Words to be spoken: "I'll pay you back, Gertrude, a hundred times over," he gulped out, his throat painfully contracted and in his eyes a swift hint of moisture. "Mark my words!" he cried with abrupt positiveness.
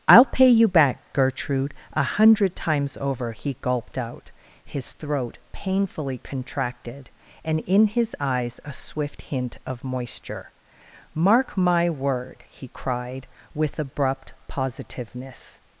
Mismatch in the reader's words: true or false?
true